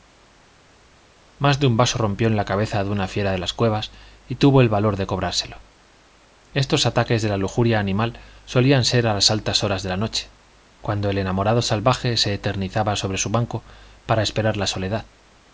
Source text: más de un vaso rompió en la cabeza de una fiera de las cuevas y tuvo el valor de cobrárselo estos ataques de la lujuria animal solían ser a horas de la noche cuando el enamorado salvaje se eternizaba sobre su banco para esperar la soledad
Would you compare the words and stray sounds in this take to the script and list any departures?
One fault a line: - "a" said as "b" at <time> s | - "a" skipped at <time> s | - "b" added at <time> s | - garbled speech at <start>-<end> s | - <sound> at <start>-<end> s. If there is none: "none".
- "las altas" added at 9.1 s